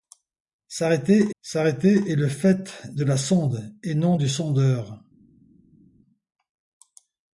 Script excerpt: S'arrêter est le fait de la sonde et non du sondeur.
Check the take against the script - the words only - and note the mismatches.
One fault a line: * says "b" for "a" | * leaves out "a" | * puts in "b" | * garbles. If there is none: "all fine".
* puts in "s'arrêter"